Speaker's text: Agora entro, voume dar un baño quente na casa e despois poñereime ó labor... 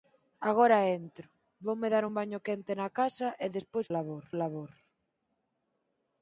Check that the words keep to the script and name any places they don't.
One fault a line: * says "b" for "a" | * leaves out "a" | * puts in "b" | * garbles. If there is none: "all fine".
* says "labor" for "poñereime"